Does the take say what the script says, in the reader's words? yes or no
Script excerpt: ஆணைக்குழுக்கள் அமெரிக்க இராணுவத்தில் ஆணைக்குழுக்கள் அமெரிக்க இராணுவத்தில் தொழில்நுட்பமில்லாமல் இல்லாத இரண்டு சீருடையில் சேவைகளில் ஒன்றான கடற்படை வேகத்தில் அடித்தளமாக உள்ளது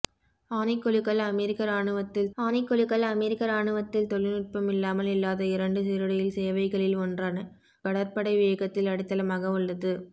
yes